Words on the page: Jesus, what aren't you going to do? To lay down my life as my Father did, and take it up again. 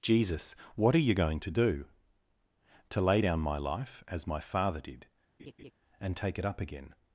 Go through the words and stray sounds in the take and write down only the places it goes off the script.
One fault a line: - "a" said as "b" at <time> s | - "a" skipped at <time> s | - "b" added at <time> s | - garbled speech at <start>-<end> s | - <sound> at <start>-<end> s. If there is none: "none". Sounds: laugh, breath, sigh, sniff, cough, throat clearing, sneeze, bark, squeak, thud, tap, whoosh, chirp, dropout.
- "aren't" said as "are" at 0.9 s
- laugh at 5.4-5.7 s